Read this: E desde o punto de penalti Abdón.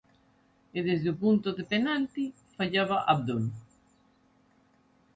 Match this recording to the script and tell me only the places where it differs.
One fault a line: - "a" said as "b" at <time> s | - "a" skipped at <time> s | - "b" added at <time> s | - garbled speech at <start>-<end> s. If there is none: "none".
- "fallaba" added at 2.6 s